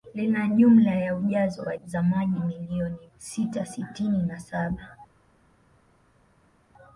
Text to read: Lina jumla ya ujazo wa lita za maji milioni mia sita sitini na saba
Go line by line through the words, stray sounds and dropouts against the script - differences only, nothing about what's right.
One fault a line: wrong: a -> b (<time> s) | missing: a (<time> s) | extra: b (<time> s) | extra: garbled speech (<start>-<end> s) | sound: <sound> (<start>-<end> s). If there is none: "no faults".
missing: lita (1.8 s)
missing: mia (3.1 s)